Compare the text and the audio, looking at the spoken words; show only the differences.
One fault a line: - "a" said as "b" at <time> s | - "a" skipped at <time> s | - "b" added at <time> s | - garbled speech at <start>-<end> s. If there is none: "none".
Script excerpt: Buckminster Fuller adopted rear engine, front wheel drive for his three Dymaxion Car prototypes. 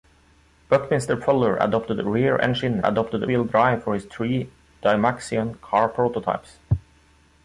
- "front" said as "adopted" at 2.8 s